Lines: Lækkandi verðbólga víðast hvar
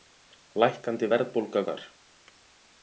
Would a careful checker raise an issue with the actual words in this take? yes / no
yes